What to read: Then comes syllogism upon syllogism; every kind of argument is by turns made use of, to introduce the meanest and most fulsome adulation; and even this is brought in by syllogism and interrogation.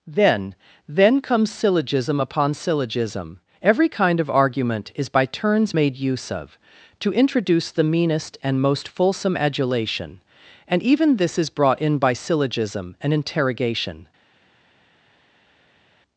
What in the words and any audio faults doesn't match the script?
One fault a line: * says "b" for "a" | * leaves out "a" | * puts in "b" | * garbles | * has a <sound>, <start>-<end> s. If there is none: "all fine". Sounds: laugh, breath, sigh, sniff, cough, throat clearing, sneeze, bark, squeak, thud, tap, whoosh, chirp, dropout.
* puts in "then"